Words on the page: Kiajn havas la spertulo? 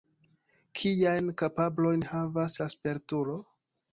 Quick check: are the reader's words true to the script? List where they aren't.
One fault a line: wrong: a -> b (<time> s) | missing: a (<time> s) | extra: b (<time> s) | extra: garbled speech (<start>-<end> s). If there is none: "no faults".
extra: kapablojn (1.4 s)